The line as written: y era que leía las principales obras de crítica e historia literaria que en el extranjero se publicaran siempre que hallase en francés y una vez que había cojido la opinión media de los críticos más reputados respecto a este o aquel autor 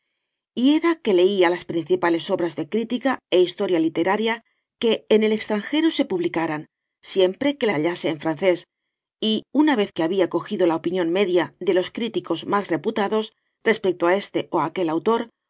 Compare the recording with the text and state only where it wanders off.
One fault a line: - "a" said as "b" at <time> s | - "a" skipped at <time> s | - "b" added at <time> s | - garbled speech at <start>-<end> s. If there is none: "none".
none